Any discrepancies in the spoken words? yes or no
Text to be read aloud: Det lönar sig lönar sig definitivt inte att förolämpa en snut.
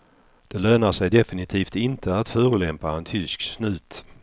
yes